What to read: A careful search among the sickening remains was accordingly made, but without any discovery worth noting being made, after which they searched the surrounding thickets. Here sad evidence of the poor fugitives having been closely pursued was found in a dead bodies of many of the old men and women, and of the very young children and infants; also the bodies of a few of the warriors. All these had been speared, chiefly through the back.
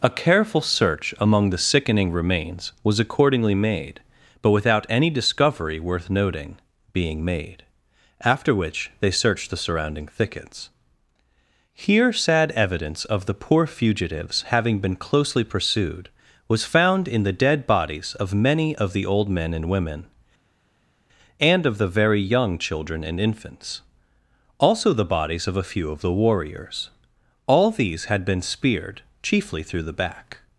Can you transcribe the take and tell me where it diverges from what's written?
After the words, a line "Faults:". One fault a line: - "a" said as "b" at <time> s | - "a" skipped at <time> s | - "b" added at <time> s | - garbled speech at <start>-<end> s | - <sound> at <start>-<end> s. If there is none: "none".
A careful search among the sickening remains was accordingly made, but without any discovery worth noting being made, after which they searched the surrounding thickets. Here sad evidence of the poor fugitives having been closely pursued was found in the dead bodies of many of the old men and women, and of the very young children and infants; also the bodies of a few of the warriors. All these had been speared, chiefly through the back.
Faults:
- "a" said as "the" at 17.2 s